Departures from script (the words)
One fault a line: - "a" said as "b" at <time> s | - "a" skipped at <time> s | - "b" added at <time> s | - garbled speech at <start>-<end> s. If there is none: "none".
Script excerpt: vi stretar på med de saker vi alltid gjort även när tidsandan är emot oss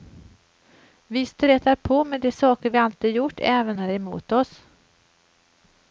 - "när tidsandan" skipped at 3.8 s